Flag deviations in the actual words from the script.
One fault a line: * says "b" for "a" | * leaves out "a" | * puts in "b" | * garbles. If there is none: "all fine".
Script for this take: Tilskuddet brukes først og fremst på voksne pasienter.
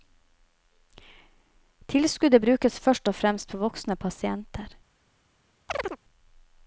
all fine